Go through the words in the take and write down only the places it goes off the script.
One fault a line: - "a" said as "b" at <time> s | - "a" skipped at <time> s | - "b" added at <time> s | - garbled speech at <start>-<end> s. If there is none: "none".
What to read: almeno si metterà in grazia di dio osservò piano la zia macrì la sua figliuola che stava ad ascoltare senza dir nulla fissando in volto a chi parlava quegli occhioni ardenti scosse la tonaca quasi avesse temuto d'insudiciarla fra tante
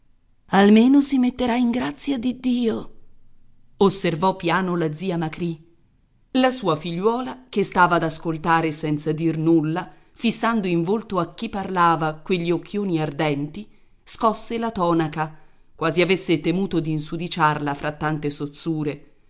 none